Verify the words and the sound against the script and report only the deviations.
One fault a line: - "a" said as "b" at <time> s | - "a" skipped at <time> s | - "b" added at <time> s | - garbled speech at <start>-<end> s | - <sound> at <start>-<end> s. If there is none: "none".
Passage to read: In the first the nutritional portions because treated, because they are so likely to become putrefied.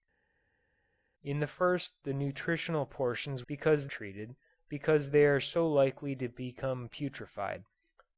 none